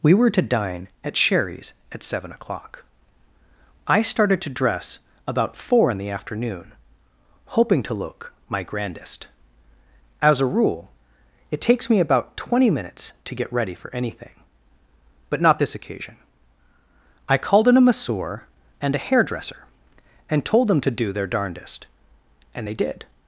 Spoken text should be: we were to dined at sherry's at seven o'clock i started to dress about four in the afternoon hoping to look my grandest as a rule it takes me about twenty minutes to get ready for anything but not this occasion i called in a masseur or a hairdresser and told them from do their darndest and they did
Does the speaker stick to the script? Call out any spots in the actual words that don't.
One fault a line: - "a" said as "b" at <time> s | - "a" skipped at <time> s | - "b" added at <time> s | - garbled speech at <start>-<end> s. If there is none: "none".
- "dined" said as "dine" at 0.4 s
- "or" said as "and" at 18.8 s
- "from" said as "to" at 20.8 s